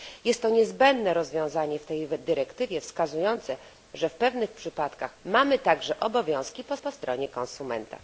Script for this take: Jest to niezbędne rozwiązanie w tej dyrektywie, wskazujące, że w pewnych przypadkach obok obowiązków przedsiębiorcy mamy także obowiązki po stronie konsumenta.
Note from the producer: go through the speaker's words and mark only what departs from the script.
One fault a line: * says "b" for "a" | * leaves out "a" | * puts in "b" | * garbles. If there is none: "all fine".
* leaves out "obok obowiązków przedsiębiorcy"
* puts in "po"